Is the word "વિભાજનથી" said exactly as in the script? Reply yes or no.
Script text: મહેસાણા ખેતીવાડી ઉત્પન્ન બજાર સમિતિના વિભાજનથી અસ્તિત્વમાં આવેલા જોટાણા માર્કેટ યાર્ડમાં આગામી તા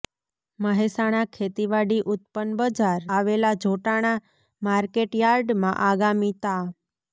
no